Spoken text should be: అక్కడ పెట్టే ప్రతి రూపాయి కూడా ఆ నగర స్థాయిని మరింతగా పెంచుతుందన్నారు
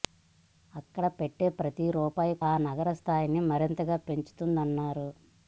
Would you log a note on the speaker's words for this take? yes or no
yes